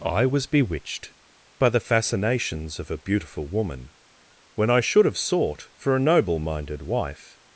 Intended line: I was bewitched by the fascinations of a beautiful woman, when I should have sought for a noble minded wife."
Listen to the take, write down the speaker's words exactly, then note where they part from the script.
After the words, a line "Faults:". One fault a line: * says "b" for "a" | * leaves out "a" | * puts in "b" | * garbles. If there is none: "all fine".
I was bewitched by the fascinations of a beautiful woman, when I should have sought for a noble minded wife."
Faults:
all fine